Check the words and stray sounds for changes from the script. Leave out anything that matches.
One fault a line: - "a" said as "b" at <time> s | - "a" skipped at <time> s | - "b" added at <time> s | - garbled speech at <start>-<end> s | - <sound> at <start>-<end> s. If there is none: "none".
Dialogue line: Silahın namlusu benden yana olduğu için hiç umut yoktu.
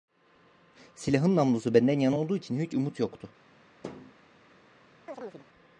- thud at 3.8-4.1 s
- chirp at 5.1-5.5 s